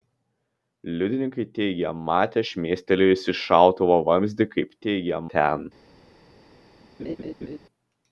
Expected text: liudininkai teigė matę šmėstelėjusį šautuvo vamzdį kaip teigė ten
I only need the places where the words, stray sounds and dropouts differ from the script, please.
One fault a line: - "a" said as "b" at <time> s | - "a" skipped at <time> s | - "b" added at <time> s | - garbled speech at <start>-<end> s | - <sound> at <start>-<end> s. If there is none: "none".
- laugh at 7.0-7.6 s